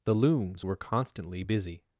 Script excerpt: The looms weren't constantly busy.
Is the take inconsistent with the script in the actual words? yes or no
yes